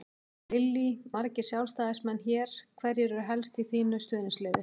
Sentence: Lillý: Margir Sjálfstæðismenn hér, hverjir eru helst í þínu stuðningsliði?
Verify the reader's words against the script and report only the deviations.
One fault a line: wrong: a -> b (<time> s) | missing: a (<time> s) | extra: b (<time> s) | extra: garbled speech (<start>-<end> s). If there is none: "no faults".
no faults